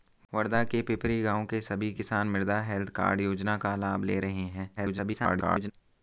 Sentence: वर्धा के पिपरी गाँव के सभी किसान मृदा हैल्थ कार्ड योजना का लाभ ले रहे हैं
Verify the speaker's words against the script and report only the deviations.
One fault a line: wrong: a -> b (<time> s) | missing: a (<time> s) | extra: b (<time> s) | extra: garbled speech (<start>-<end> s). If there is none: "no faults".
extra: garbled speech (4.8-5.7 s)